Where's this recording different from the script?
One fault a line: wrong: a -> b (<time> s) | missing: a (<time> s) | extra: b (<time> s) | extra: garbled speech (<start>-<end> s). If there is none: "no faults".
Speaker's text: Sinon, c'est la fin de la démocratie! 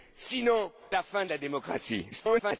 missing: c'est (0.7 s)
extra: garbled speech (2.1-2.6 s)